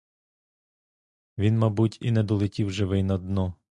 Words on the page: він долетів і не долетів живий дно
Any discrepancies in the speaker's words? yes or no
yes